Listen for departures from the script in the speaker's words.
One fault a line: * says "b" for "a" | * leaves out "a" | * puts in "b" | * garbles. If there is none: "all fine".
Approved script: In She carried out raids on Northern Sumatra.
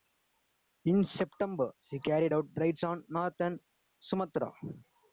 * puts in "September"